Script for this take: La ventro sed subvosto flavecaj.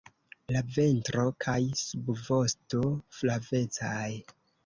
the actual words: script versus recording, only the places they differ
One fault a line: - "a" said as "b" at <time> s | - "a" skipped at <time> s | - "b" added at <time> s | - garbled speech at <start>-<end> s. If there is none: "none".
- "sed" said as "kaj" at 1.4 s